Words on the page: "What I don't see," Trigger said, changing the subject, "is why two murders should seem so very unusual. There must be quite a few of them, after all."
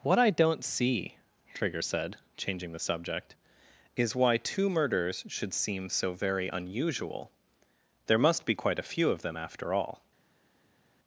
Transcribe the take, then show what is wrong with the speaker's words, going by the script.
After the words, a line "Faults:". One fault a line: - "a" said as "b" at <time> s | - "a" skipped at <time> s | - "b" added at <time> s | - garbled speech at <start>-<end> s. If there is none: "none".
"What I don't see," Trigger said, changing the subject, "is why two murders should seem so very unusual. There must be quite a few of them, after all."
Faults:
none